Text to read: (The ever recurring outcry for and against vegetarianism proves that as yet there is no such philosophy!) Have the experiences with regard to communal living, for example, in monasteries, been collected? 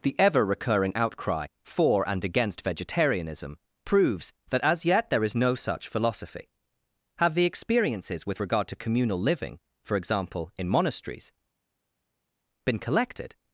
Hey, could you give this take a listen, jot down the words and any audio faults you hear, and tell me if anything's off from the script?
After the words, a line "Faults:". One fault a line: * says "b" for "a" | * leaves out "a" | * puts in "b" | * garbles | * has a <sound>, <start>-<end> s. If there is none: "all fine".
(The ever recurring outcry for and against vegetarianism proves that as yet there is no such philosophy!) Have the experiences with regard to communal living, for example, in monasteries, been collected?
Faults:
all fine